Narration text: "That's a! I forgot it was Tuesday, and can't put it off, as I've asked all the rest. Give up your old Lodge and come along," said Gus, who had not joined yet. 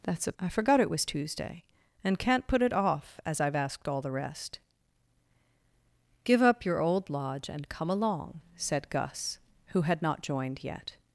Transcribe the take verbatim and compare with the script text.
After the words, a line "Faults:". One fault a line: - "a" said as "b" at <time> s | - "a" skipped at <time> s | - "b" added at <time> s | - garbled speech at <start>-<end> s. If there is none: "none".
"That's a! I forgot it was Tuesday, and can't put it off, as I've asked all the rest. Give up your old Lodge and come along," said Gus, who had not joined yet.
Faults:
none